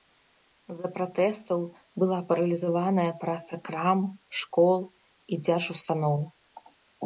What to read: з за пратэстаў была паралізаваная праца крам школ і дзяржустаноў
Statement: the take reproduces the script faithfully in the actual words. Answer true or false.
true